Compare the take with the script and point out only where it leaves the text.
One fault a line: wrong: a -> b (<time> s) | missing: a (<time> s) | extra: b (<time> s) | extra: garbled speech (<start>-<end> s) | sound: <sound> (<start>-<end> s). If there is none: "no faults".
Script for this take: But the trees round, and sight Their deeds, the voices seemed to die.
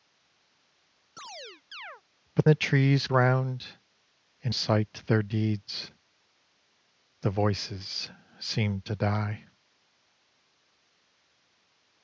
sound: chirp (1.2-2.0 s)